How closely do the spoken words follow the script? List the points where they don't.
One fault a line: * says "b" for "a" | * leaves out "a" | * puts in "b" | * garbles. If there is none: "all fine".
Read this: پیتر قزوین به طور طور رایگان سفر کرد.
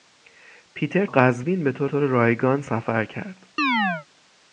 all fine